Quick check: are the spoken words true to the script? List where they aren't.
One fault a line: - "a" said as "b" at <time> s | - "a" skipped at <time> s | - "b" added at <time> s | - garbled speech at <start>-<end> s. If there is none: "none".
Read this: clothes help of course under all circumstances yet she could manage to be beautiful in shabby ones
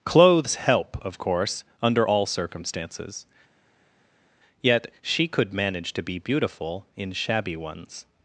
none